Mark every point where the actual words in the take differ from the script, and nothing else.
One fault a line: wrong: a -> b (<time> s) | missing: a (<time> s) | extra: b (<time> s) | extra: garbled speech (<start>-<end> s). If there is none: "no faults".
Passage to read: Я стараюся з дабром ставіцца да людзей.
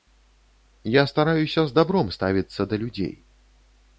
no faults